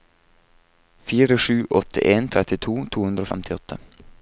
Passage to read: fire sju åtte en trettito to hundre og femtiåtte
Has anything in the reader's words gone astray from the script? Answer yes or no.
no